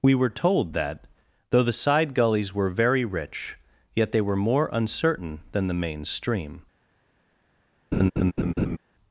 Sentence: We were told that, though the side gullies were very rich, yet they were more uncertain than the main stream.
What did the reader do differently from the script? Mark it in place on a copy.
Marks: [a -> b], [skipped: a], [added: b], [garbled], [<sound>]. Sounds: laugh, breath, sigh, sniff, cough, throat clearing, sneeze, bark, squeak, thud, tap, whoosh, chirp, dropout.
We were told that, though the side gullies were very rich, yet they were more uncertain than the main stream. [laugh]